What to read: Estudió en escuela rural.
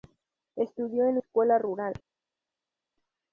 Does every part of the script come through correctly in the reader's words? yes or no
yes